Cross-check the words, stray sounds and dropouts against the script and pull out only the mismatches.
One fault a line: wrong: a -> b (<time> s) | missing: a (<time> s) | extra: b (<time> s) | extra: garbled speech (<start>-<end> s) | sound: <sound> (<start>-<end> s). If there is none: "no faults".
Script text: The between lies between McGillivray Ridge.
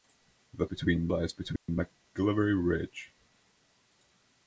sound: dropout (1.6-1.7 s)